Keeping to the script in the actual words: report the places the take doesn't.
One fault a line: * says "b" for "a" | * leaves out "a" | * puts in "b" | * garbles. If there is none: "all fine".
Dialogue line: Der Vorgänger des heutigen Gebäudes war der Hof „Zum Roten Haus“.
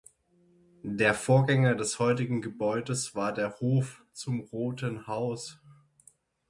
all fine